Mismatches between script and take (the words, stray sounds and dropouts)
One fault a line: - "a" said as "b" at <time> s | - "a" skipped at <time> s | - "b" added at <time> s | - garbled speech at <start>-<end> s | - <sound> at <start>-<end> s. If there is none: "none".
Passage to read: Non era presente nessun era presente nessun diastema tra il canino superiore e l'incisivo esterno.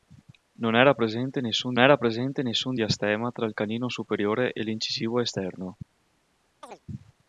- chirp at 6.6-6.8 s